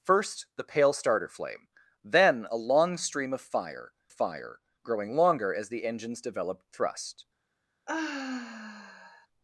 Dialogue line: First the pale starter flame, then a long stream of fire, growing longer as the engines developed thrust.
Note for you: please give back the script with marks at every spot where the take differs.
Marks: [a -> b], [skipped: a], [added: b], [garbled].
First the pale starter flame, then a long stream of fire, [added: fire] growing longer as the engines developed thrust.